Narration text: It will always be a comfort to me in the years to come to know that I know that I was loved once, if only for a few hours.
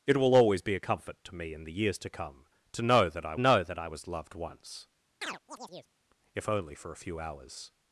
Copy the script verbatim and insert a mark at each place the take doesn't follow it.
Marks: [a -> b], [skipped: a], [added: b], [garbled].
It will always be a comfort to me in the years to come to know that I know that I was loved once, if only for a few hours.